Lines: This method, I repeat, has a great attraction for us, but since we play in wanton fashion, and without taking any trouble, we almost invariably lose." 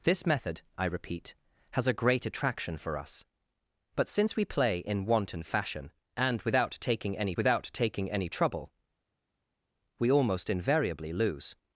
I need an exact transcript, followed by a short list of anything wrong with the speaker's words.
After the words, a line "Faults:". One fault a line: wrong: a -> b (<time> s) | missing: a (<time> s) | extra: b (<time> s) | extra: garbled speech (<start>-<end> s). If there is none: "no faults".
This method, I repeat, has a great attraction for us, but since we play in wanton fashion, and without taking any without taking any trouble, we almost invariably lose."
Faults:
extra: without taking any (7.3 s)